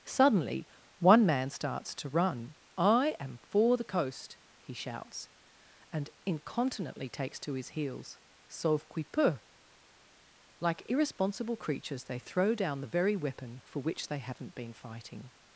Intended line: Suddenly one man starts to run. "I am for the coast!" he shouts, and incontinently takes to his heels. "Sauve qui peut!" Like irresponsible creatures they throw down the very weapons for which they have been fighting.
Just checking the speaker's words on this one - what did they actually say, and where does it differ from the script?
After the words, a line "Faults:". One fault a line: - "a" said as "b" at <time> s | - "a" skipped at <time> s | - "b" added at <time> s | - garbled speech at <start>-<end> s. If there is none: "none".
Suddenly one man starts to run. "I am for the coast!" he shouts, and incontinently takes to his heels. "Sauve qui peut!" Like irresponsible creatures they throw down the very weapon for which they haven't been fighting.
Faults:
- "weapons" said as "weapon" at 13.2 s
- "have" said as "haven't" at 14.2 s